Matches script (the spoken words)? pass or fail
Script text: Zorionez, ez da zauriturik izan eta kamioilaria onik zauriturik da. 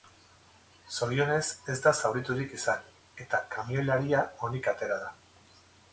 fail